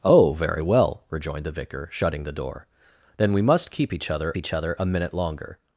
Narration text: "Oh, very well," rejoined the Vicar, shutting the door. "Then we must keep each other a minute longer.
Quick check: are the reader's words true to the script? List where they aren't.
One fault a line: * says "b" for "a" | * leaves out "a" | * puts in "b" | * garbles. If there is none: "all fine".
* puts in "each other"